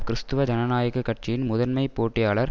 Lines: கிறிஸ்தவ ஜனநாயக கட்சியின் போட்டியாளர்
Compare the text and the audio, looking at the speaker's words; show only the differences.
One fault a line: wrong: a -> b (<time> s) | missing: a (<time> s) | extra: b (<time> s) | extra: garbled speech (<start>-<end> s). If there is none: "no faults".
extra: முதன்மை (1.4 s)